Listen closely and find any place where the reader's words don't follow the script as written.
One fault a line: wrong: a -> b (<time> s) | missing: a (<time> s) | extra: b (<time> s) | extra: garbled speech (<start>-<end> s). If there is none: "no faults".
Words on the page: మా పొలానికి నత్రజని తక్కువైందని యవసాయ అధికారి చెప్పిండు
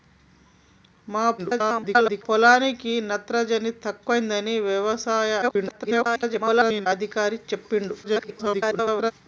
extra: garbled speech (1.4-2.2 s)
extra: garbled speech (5.4-6.9 s)
extra: garbled speech (8.0-9.1 s)